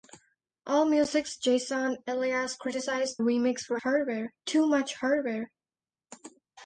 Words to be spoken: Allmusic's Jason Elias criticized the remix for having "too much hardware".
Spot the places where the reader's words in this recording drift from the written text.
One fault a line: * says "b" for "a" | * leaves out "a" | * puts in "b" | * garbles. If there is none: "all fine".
* leaves out "the"
* says "hardware" for "having"